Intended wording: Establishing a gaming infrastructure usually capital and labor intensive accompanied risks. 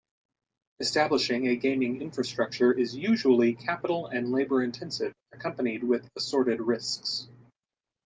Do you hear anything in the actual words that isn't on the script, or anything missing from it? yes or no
yes